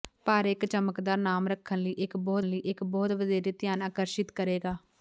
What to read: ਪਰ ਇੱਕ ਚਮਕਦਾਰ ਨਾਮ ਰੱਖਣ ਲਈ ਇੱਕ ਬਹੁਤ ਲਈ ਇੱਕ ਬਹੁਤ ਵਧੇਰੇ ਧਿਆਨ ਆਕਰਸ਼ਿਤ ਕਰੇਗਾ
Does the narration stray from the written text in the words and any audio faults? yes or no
no